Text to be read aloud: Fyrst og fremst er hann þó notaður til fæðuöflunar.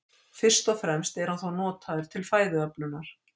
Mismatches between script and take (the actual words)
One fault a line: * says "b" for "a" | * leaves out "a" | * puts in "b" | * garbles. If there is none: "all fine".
all fine